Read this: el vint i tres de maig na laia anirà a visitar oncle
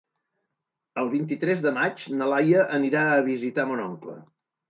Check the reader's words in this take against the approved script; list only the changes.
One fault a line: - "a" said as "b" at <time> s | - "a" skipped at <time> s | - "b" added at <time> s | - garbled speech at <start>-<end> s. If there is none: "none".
- "mon" added at 3.7 s